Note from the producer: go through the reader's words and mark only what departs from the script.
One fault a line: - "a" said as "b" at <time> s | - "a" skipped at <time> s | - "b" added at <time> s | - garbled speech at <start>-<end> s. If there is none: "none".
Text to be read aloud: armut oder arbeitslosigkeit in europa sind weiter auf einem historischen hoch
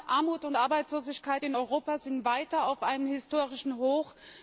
- "oder" said as "und" at 0.5 s